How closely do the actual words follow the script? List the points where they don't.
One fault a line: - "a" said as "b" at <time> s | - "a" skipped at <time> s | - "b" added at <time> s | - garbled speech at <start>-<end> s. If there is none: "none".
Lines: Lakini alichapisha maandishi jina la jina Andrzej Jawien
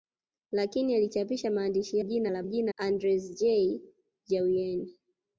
none